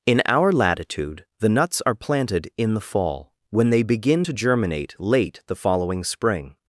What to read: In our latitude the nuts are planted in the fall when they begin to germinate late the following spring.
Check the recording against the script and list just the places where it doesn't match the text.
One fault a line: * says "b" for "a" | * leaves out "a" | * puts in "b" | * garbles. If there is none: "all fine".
all fine